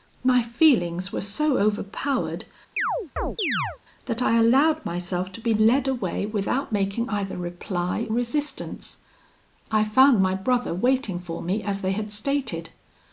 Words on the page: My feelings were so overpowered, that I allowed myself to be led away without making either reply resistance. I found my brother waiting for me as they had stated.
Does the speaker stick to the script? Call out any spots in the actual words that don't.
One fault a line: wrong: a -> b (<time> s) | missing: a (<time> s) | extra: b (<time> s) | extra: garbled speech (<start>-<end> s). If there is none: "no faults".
no faults